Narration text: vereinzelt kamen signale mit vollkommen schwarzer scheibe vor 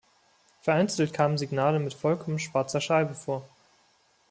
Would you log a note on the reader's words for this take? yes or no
no